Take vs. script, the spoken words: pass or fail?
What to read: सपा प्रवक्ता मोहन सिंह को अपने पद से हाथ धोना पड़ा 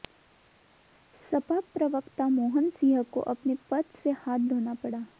pass